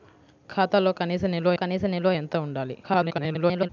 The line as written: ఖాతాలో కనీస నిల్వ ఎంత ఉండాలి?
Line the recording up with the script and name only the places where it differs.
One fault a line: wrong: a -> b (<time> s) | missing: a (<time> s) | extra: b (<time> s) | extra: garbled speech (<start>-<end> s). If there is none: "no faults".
extra: కనీస నిల్వ (1.5 s)
extra: garbled speech (2.8-3.7 s)